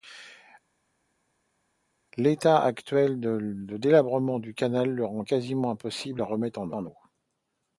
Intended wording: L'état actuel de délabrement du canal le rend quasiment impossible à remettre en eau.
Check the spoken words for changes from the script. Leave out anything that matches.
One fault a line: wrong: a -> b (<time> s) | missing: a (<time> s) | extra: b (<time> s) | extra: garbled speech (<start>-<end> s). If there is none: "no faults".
extra: en (6.7 s)